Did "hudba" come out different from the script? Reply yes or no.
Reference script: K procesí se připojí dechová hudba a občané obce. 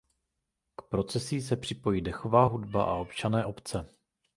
no